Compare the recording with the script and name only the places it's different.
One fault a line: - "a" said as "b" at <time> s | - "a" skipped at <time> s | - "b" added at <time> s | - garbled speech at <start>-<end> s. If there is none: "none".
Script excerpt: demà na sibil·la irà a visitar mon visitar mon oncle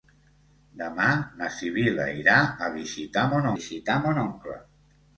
none